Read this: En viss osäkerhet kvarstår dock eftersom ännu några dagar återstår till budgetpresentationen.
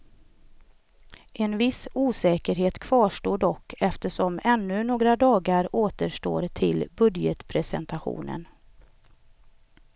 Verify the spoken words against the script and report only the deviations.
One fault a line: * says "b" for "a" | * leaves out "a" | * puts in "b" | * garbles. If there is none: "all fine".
all fine